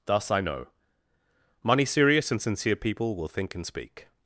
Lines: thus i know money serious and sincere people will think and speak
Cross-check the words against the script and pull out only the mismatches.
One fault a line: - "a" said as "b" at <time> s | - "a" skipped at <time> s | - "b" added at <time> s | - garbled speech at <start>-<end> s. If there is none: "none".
none